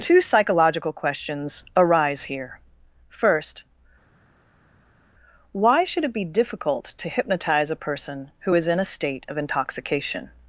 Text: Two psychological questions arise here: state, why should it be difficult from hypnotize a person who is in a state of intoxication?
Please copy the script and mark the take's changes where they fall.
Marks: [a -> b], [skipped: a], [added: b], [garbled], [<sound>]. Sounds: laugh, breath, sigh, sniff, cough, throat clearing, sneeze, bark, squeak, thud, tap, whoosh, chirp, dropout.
Two psychological questions arise here: [state, -> first] why should it be difficult [from -> to] hypnotize a person who is in a state of intoxication?